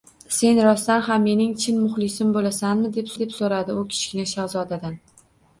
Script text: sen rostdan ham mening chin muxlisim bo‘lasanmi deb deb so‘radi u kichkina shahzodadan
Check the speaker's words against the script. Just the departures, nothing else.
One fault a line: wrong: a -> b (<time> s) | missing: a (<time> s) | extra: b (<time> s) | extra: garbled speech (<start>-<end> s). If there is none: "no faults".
no faults